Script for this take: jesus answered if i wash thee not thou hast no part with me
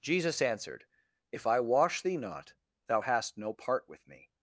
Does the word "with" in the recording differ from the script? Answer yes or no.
no